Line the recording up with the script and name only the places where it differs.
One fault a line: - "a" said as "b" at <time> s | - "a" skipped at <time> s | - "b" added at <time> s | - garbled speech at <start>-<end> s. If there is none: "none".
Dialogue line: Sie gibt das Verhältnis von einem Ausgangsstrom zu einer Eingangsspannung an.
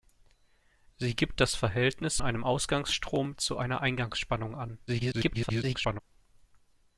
- "von" skipped at 2.2 s
- garbled speech at 4.9-6.0 s